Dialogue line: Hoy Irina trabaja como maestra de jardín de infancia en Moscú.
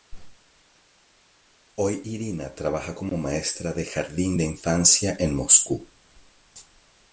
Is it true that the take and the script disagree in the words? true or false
false